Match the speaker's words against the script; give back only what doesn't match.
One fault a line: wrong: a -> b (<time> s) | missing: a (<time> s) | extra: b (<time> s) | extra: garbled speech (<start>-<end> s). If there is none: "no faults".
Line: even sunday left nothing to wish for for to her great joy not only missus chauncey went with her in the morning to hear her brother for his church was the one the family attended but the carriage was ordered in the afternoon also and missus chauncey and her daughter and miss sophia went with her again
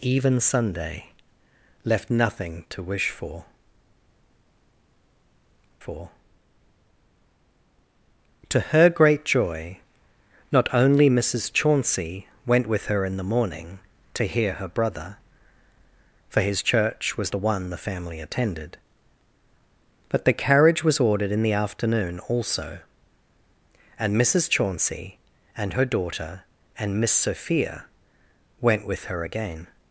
no faults